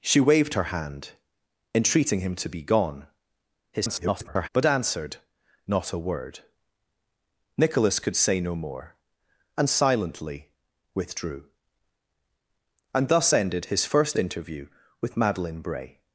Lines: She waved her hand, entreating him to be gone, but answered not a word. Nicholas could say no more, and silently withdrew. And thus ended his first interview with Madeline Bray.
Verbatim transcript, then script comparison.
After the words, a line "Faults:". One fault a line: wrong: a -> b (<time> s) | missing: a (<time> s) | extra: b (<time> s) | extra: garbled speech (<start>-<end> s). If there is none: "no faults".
She waved her hand, entreating him to be gone, [garbled] but answered not a word. Nicholas could say no more, and silently withdrew. And thus ended his first interview with Madeline Bray.
Faults:
extra: garbled speech (3.7-4.5 s)